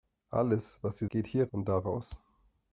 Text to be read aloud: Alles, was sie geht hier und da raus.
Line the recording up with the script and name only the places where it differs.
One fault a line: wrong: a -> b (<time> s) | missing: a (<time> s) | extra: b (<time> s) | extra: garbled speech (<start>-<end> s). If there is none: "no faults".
no faults